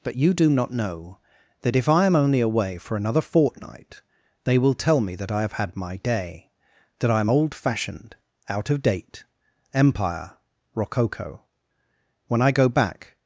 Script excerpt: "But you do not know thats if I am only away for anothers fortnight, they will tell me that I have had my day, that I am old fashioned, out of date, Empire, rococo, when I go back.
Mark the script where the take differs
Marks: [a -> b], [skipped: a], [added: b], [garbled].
"But you do not know [thats -> that] if I am only away for [anothers -> another] fortnight, they will tell me that I have had my day, that I am old fashioned, out of date, Empire, rococo, when I go back.